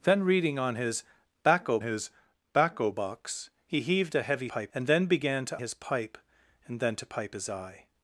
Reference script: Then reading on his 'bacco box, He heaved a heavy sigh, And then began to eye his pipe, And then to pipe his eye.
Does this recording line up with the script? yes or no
no